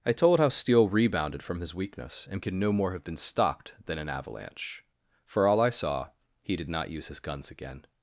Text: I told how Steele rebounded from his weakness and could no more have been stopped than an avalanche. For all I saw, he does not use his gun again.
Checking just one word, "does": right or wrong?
wrong